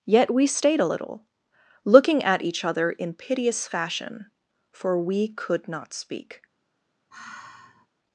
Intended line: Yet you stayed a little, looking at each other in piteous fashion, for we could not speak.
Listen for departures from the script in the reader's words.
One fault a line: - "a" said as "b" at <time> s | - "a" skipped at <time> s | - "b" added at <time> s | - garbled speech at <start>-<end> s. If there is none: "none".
- "you" said as "we" at 0.3 s